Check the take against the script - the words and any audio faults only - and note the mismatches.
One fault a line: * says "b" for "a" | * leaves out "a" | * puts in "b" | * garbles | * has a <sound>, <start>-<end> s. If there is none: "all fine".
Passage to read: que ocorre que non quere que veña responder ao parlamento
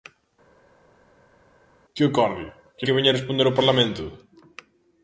* leaves out "non quere"